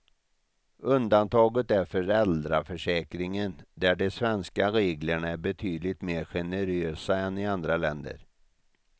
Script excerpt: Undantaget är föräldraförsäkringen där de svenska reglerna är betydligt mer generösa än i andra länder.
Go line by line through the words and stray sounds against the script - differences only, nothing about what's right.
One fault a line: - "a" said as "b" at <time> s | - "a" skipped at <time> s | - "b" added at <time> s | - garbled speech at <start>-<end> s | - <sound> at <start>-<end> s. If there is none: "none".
none